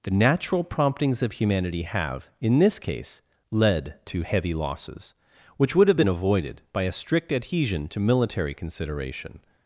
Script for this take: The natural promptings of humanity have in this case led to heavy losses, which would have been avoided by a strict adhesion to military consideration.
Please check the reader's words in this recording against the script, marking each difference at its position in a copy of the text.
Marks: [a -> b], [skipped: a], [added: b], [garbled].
The natural promptings of humanity have in this case led to heavy losses, which would have been avoided by a strict adhesion to military consideration.